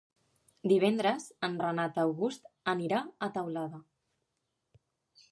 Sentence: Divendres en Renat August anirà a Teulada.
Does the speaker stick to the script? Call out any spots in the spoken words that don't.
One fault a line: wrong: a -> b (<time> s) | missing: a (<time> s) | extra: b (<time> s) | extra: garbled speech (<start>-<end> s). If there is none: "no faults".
no faults